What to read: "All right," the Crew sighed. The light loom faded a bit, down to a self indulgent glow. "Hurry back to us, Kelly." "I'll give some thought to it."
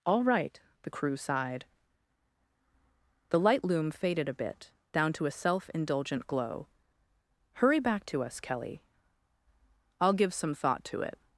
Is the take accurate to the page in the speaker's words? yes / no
yes